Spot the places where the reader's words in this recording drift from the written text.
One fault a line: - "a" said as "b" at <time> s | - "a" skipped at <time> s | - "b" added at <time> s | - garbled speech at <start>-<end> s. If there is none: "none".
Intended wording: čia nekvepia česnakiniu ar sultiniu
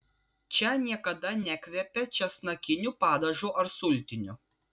- "niekada" added at 0.8 s
- "padažu" added at 3.0 s